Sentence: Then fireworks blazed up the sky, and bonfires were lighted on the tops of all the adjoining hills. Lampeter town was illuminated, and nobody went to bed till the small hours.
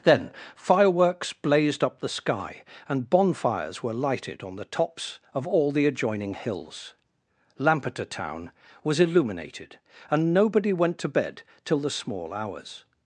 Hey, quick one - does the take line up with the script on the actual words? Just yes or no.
yes